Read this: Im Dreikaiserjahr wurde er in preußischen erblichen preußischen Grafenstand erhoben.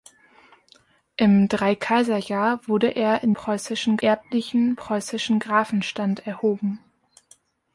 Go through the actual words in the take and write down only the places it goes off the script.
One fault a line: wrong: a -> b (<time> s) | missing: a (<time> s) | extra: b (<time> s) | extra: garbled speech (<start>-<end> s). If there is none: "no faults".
no faults